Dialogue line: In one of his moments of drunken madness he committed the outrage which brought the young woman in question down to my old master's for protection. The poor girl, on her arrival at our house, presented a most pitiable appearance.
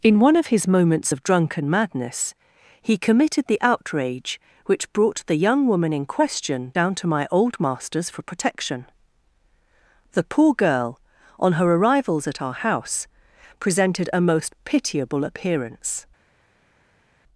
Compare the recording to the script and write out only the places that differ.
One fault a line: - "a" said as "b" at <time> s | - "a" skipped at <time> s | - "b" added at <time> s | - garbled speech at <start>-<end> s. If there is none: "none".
- "arrival" said as "arrivals" at 11.7 s